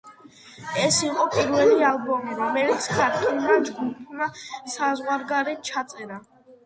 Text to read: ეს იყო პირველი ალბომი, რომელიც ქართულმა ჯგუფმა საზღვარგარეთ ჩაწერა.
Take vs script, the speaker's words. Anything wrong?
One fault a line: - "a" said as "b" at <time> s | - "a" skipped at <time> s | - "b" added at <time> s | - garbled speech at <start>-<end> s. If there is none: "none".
none